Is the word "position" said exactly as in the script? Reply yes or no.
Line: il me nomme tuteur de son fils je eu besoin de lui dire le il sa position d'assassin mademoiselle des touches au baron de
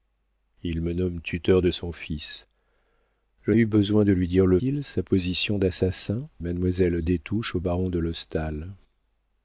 yes